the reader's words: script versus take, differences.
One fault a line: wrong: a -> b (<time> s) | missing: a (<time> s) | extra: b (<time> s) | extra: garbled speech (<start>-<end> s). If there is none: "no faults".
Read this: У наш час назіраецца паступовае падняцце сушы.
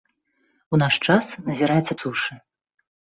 missing: паступовае падняцце (2.0 s)